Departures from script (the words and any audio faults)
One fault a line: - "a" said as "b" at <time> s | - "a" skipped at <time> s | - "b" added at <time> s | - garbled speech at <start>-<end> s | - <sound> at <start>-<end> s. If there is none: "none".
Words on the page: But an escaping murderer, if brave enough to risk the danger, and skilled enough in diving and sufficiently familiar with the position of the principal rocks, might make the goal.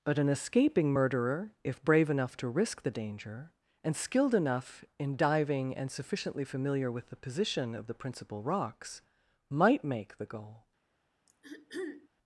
- throat clearing at 11.3-12.1 s